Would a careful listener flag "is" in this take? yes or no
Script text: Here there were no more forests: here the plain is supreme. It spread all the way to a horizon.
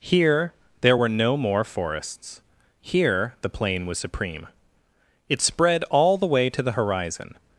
yes